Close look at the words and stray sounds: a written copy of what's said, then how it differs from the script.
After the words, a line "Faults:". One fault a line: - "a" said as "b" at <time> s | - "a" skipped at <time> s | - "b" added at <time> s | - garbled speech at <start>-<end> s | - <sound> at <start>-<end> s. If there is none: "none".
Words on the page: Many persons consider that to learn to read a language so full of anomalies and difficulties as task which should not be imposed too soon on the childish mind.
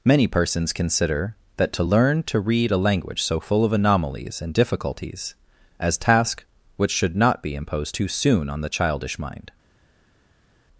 Many persons consider that to learn to read a language so full of anomalies and difficulties as task which should not be imposed too soon on the childish mind.
Faults:
none